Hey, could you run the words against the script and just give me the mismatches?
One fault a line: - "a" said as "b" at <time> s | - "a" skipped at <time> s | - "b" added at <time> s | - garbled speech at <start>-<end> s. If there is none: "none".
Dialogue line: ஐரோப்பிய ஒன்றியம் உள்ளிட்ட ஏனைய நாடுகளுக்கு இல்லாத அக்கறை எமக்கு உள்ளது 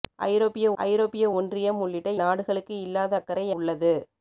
- "ஐரோப்பிய" added at 0.8 s
- "ஏனைய" skipped at 2.1 s
- "எமக்கு" skipped at 3.5 s